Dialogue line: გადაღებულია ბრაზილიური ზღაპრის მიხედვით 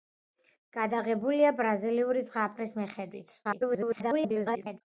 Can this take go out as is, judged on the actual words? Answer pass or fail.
fail